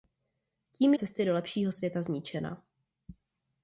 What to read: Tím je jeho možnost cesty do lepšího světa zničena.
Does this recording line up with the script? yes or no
no